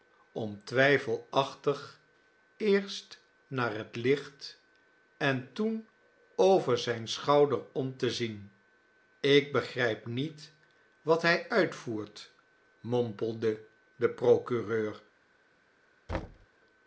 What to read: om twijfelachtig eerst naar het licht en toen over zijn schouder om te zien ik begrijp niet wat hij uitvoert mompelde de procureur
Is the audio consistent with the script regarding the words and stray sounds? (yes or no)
no